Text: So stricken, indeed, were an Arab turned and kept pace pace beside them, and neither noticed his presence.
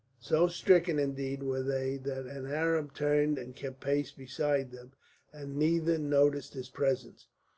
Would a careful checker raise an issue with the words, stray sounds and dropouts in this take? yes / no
yes